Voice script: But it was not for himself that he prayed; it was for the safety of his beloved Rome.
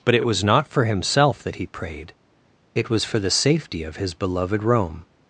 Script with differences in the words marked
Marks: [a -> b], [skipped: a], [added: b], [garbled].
But it [added: it] was not for himself that he prayed; it was for the safety of his beloved Rome.